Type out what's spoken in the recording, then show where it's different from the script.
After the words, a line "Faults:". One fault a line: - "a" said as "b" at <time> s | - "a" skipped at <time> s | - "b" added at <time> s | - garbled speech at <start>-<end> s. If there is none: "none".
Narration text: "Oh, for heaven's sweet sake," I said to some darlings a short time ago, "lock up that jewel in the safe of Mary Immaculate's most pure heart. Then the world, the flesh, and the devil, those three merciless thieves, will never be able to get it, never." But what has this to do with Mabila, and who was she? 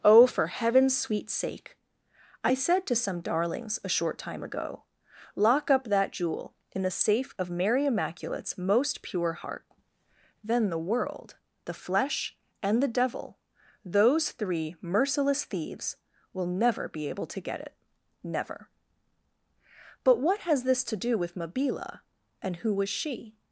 "Oh, for heaven's sweet sake," I said to some darlings a short time ago, "lock up that jewel in the safe of Mary Immaculate's most pure heart. Then the world, the flesh, and the devil, those three merciless thieves, will never be able to get it, never." But what has this to do with Mabila, and who was she?
Faults:
none